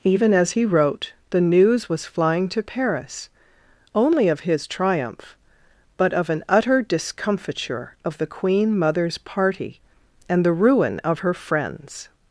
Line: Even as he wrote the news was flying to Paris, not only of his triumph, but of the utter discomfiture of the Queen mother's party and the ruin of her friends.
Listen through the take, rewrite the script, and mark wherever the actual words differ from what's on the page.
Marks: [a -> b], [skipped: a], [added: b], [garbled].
Even as he wrote the news was flying to Paris, [skipped: not] only of his triumph, but of [the -> an] utter discomfiture of the Queen mother's party and the ruin of her friends.